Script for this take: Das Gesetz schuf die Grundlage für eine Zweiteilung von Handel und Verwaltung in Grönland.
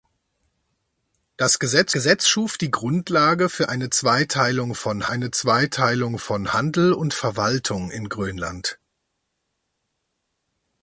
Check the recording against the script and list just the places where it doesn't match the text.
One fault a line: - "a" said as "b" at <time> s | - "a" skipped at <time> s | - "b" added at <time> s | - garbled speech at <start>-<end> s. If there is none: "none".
- "Gesetz" added at 1.9 s
- "eine Zweiteilung von" added at 5.1 s